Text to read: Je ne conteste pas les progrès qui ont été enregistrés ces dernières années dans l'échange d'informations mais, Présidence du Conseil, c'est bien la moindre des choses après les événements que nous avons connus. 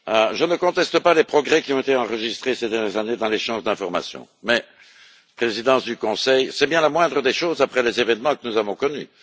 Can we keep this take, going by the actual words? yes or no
yes